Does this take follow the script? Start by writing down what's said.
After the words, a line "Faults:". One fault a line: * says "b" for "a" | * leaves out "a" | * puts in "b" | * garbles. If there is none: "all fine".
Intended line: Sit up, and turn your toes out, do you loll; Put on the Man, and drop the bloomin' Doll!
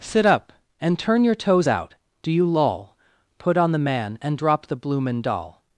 Sit up, and turn your toes out, do you loll; Put on the Man, and drop the bloomin' Doll!
Faults:
all fine